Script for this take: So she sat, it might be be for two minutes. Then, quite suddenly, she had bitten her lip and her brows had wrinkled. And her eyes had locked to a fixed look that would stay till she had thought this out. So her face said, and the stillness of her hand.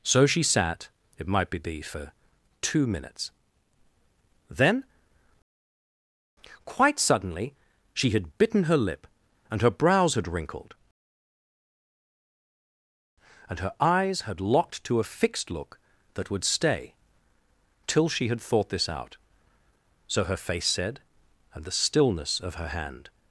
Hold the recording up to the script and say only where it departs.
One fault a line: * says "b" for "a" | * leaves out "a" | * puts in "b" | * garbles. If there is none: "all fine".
all fine